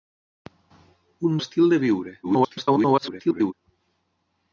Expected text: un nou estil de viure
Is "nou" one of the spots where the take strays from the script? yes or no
yes